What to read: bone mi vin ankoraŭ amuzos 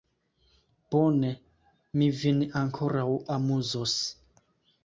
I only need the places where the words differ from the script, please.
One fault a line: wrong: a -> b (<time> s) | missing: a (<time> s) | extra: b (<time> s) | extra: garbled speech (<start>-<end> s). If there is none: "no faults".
no faults